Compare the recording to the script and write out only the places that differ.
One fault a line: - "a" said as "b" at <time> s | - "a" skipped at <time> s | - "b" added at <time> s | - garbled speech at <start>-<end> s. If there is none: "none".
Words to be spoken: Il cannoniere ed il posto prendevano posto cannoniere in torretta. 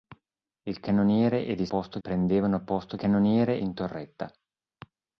none